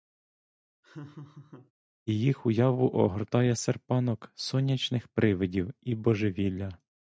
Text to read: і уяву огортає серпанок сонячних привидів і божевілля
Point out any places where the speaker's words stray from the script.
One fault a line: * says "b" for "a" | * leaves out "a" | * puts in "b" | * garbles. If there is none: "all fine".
* puts in "їх"